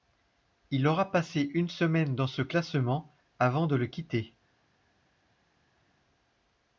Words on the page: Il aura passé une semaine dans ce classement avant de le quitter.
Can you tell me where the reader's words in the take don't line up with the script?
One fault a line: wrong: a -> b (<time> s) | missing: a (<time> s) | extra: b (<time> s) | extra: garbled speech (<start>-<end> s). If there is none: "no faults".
no faults